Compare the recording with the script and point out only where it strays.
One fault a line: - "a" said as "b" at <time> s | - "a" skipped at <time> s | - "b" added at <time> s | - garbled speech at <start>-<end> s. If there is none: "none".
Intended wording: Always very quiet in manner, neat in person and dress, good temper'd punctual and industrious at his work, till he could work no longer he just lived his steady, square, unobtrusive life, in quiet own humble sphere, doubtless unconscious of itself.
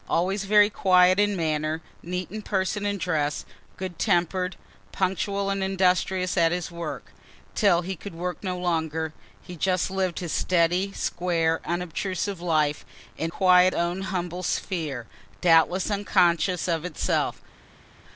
none